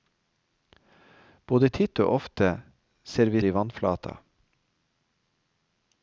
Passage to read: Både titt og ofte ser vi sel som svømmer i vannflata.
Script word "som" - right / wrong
wrong